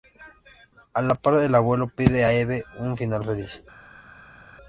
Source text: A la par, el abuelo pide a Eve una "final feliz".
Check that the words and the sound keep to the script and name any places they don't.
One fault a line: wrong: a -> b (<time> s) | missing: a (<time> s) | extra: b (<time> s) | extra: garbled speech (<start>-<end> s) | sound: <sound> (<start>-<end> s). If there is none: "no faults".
wrong: una -> un (2.8 s)